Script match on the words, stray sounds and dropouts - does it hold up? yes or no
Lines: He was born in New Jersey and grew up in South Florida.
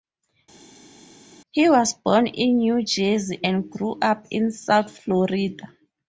yes